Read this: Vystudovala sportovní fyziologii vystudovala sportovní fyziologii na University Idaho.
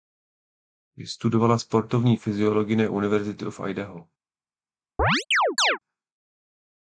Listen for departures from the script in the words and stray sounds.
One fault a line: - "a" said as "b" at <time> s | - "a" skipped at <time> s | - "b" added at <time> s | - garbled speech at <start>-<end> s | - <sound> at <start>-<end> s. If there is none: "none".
- "vystudovala sportovní fyziologii" skipped at 2.8 s
- "of" added at 3.5 s
- chirp at 5.0-5.8 s